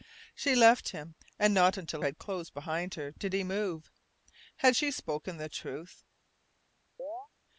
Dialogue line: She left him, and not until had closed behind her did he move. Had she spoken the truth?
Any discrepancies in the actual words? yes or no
no